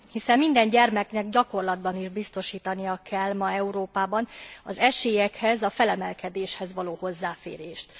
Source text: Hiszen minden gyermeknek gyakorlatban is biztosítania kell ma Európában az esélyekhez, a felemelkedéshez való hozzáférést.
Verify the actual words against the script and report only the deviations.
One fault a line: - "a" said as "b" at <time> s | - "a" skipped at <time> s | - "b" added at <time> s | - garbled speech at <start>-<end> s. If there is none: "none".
none